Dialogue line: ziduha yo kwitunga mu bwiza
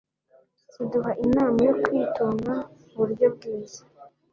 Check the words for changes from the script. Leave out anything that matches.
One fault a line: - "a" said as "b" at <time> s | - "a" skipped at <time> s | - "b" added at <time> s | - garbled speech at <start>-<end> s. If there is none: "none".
- "inama" added at 1.2 s
- "buryo" added at 3.0 s